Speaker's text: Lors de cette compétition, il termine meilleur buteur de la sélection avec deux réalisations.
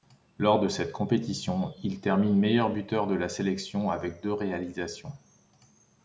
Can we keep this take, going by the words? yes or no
yes